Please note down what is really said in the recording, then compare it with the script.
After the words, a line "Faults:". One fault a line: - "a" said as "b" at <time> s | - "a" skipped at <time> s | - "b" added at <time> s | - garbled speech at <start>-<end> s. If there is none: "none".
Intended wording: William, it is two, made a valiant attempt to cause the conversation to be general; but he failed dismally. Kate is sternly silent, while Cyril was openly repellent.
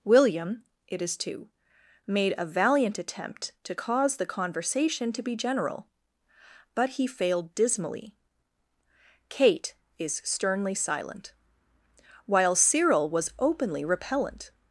William, it is two, made a valiant attempt to cause the conversation to be general; but he failed dismally. Kate is sternly silent, while Cyril was openly repellent.
Faults:
none